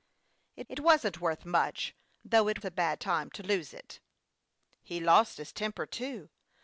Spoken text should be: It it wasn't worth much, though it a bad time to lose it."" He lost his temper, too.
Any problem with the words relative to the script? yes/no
no